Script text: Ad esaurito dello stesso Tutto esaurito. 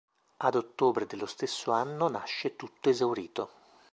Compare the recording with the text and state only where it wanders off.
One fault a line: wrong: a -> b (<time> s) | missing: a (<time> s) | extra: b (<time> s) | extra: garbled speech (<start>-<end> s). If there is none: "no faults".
wrong: esaurito -> ottobre (0.6 s)
extra: anno nasce (1.7 s)